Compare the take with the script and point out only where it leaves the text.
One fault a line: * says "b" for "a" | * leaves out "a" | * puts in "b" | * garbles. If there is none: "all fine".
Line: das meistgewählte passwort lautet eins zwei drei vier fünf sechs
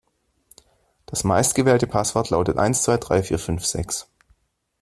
all fine